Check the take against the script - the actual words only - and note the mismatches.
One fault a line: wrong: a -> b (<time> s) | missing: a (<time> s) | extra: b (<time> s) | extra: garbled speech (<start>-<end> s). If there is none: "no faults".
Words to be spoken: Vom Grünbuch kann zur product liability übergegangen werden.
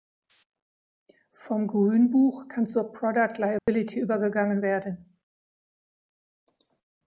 no faults